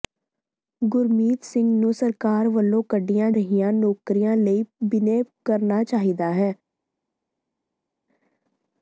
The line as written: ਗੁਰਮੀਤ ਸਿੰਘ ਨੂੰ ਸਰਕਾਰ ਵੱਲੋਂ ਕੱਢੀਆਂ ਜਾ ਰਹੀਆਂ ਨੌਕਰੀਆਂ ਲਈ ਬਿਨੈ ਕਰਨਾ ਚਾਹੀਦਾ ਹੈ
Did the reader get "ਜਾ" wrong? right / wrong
wrong